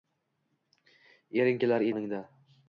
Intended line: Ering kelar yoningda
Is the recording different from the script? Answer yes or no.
no